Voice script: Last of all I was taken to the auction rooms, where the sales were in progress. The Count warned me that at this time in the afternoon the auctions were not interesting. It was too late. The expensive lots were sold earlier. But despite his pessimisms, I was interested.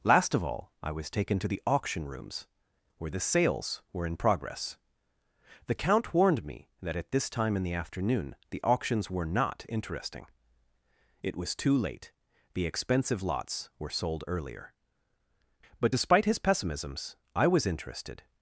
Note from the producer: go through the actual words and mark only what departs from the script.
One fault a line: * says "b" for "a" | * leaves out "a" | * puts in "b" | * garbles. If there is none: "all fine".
all fine